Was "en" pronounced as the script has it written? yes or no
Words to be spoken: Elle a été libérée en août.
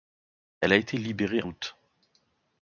no